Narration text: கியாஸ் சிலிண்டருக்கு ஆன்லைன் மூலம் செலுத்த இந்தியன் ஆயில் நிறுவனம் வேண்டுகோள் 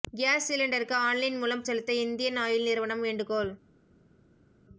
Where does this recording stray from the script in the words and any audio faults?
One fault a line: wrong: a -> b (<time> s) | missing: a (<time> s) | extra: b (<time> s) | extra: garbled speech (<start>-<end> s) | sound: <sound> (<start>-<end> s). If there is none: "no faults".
no faults